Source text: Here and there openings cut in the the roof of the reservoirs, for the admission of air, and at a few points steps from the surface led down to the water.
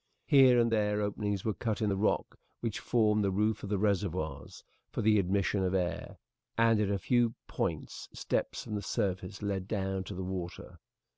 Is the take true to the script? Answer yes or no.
no